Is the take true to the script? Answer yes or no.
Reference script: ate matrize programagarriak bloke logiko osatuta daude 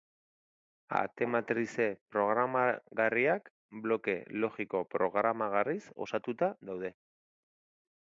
no